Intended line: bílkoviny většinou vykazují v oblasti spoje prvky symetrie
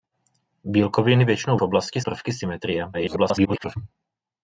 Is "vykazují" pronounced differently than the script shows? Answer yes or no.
yes